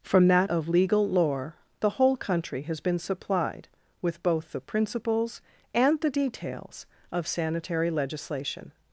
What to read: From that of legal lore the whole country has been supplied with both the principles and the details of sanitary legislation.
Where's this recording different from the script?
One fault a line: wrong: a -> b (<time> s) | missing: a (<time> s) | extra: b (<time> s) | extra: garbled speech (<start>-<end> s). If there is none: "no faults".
no faults